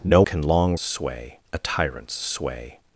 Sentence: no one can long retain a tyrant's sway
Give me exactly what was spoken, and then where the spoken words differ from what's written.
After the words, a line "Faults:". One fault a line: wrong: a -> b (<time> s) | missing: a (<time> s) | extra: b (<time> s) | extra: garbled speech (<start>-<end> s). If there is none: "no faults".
no can long sway a tyrant's sway
Faults:
missing: one (0.2 s)
wrong: retain -> sway (0.7 s)